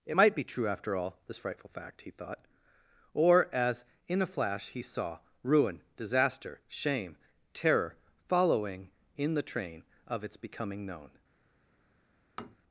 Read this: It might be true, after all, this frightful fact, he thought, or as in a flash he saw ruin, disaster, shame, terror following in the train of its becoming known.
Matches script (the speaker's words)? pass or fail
pass